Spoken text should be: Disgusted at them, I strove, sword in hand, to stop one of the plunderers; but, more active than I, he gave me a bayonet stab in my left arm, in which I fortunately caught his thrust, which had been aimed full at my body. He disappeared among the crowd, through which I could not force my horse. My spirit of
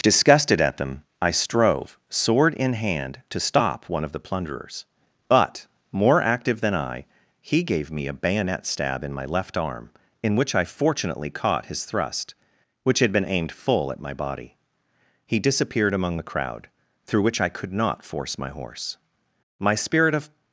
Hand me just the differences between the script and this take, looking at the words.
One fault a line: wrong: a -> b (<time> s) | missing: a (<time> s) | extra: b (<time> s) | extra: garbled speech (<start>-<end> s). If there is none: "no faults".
no faults